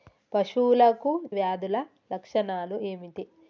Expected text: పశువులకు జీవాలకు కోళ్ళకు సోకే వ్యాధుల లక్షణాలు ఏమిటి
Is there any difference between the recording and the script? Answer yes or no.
yes